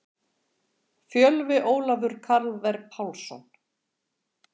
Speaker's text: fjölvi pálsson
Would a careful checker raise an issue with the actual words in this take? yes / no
yes